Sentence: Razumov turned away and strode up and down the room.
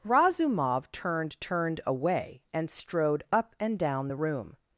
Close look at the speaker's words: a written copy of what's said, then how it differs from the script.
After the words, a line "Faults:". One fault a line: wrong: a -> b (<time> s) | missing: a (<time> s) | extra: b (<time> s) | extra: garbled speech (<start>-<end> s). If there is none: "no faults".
Razumov turned turned away and strode up and down the room.
Faults:
extra: turned (1.4 s)